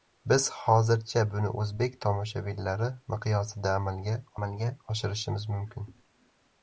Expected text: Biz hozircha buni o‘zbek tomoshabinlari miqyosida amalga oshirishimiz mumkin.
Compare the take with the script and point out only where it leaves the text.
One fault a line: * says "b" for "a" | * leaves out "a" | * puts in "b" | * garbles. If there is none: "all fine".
* puts in "amalga"